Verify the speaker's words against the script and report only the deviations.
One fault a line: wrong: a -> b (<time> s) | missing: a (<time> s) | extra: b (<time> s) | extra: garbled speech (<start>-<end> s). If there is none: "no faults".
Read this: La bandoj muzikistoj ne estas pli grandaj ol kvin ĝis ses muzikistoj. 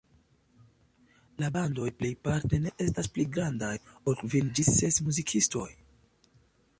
wrong: muzikistoj -> plejparte (2.0 s)